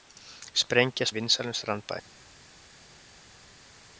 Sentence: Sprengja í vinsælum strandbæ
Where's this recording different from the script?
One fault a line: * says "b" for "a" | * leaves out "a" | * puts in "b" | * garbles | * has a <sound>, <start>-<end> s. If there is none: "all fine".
all fine